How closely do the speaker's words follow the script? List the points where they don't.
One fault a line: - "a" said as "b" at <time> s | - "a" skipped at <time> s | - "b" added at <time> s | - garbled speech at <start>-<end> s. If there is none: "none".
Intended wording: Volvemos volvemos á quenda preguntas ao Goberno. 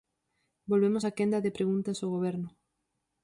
- "volvemos" skipped at 1.0 s
- "de" added at 1.4 s